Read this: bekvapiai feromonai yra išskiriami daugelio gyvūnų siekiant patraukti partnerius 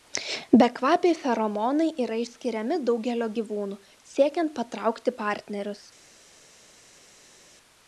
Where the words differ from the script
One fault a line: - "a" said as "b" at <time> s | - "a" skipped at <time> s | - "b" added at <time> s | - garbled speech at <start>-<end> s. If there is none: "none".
none